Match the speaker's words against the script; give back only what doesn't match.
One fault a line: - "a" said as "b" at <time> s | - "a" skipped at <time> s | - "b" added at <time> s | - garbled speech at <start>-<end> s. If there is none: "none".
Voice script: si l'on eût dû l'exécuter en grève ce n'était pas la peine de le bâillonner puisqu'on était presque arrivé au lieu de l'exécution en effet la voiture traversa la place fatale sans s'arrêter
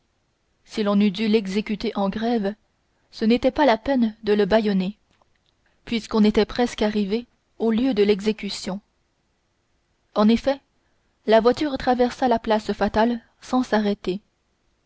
none